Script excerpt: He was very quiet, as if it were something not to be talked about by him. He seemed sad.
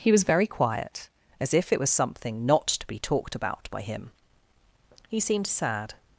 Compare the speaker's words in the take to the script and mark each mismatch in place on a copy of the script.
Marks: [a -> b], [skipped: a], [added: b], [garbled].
He was very quiet, as if it [were -> was] something not to be talked about by him. He seemed sad.